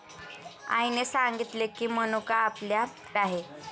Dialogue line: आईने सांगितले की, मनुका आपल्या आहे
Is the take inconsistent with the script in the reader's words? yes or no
no